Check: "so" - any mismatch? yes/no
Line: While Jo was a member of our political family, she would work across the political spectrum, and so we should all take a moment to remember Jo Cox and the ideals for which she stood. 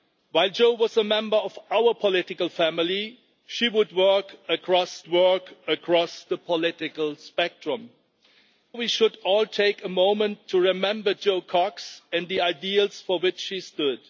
yes